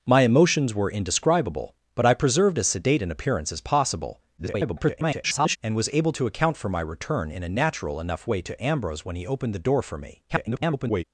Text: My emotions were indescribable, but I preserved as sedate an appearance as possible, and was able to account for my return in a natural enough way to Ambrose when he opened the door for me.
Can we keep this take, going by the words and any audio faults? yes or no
no